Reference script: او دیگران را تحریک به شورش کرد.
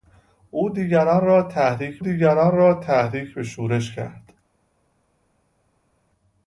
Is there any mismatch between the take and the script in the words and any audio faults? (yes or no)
yes